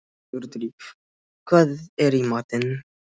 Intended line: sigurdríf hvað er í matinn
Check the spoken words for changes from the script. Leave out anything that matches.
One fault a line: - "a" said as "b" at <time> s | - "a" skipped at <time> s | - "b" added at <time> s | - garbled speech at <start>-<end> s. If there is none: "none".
none